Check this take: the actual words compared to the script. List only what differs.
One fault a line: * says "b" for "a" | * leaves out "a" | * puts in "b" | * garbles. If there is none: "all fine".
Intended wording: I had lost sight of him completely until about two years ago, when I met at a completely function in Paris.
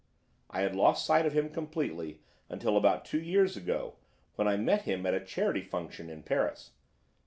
* puts in "him"
* says "charity" for "completely"